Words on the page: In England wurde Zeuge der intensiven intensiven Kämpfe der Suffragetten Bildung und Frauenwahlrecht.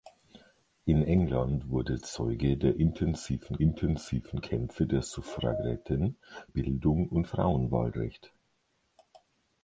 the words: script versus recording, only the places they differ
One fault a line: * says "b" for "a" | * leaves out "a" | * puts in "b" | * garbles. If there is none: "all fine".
all fine